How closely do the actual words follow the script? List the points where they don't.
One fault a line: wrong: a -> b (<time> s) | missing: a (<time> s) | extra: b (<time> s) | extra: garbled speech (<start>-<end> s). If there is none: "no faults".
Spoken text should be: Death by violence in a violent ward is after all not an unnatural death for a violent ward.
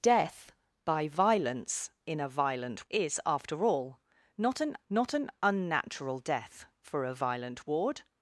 missing: ward (2.9 s)
extra: not an (4.9 s)